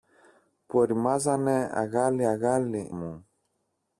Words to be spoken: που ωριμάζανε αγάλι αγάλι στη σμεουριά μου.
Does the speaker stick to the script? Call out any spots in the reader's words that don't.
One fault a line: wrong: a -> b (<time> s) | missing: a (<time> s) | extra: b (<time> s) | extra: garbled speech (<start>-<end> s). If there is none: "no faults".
missing: στη σμεουριά (2.9 s)